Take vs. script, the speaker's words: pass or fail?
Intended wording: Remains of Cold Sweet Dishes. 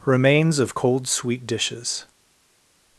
pass